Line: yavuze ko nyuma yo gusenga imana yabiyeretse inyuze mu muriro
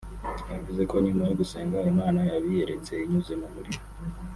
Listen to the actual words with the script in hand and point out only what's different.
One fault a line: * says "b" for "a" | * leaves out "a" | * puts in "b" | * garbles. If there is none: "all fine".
all fine